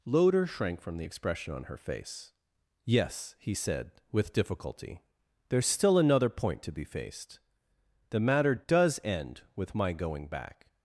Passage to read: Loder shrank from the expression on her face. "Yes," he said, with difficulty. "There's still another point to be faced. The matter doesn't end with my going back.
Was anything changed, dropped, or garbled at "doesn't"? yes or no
yes